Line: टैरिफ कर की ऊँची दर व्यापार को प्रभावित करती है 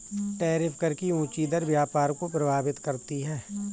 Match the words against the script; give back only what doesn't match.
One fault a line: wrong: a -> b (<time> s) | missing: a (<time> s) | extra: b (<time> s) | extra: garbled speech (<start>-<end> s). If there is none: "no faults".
no faults